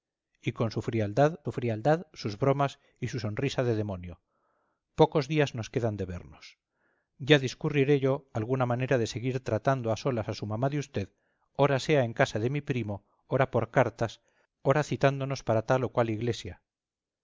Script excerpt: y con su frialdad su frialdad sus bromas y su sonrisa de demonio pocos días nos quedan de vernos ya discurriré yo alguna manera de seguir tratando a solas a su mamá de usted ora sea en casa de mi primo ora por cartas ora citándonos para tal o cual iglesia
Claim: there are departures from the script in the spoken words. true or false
false